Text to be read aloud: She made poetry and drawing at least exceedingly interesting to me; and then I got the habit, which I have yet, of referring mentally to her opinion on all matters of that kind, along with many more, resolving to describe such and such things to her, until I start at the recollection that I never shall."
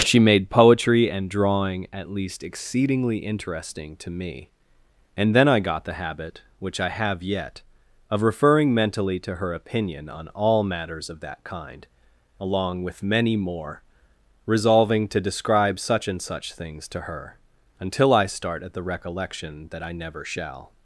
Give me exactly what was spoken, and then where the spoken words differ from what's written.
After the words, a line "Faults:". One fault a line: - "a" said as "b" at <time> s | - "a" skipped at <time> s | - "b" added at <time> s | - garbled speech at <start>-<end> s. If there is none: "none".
She made poetry and drawing at least exceedingly interesting to me; and then I got the habit, which I have yet, of referring mentally to her opinion on all matters of that kind, along with many more, resolving to describe such and such things to her, until I start at the recollection that I never shall."
Faults:
none